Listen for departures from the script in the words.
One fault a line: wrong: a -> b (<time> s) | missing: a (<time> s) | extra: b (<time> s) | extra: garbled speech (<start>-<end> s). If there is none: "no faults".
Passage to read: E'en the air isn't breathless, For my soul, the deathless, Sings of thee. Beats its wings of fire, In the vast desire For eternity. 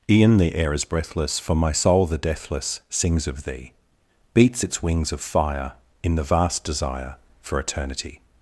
wrong: isn't -> is (0.7 s)